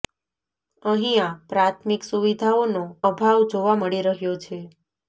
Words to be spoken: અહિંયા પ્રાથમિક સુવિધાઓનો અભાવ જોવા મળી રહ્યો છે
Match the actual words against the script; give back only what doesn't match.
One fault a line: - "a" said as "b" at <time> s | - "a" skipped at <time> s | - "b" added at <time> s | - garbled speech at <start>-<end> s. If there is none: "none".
none